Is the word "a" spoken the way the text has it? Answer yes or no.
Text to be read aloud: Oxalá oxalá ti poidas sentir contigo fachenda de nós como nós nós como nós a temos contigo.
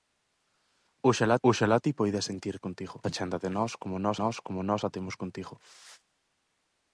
yes